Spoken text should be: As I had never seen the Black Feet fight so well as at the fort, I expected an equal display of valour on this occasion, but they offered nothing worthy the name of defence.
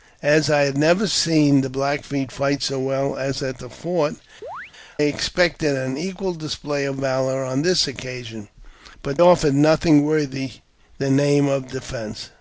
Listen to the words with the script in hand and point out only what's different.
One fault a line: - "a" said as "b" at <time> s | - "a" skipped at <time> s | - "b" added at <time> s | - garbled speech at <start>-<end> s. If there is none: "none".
- "I" skipped at 4.1 s
- "they" skipped at 9.2 s